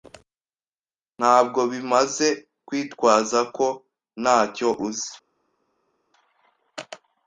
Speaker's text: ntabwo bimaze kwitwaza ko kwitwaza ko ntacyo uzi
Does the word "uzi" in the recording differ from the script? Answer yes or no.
no